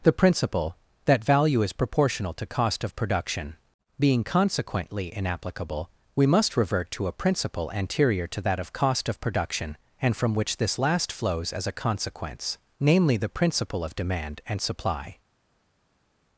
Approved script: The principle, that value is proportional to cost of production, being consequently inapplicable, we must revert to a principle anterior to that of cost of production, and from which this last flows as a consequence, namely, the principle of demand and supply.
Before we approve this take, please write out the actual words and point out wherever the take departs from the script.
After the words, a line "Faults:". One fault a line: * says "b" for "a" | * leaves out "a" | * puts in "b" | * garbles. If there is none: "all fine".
The principle, that value is proportional to cost of production, being consequently inapplicable, we must revert to a principle anterior to that of cost of production, and from which this last flows as a consequence, namely, the principle of demand and supply.
Faults:
all fine